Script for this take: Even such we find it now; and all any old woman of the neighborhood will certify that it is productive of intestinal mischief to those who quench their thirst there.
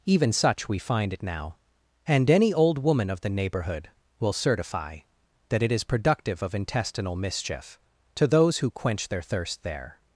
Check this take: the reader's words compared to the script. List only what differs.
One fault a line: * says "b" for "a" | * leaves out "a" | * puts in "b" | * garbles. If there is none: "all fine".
* leaves out "all"